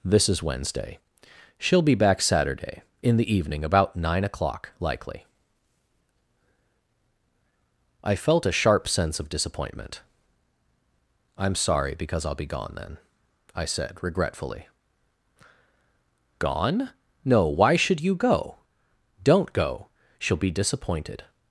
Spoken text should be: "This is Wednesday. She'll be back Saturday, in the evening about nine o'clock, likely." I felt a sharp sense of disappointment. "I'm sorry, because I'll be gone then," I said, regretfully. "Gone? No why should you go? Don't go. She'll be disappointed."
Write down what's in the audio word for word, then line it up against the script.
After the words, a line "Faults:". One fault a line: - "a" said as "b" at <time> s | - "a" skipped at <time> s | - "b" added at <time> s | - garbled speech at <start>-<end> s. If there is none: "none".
"This is Wednesday. She'll be back Saturday, in the evening about nine o'clock, likely." I felt a sharp sense of disappointment. "I'm sorry, because I'll be gone then," I said, regretfully. "Gone? No why should you go? Don't go. She'll be disappointed."
Faults:
none